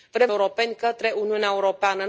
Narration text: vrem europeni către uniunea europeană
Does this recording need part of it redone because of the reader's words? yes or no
no